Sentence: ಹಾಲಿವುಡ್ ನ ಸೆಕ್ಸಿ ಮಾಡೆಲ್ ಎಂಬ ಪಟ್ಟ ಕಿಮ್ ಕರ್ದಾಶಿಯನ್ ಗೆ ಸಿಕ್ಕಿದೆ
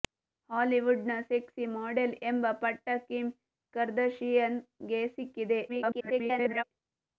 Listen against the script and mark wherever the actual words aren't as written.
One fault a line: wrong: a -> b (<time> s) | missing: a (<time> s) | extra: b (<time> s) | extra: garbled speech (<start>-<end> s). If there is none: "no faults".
extra: garbled speech (5.7-6.6 s)